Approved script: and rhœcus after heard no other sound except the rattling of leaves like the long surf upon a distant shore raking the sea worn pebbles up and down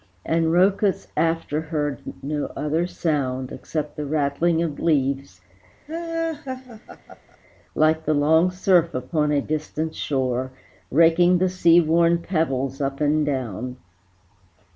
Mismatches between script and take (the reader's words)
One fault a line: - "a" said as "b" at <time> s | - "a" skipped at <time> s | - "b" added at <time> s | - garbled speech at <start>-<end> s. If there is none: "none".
none